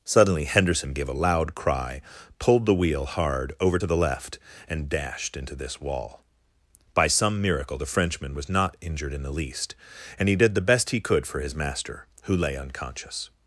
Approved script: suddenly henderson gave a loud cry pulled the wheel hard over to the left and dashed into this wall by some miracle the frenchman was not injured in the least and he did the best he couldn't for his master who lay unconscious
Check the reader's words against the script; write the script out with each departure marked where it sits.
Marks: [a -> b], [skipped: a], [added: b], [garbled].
suddenly henderson gave a loud cry pulled the wheel hard over to the left and dashed into this wall by some miracle the frenchman was not injured in the least and he did the best he [couldn't -> could] for his master who lay unconscious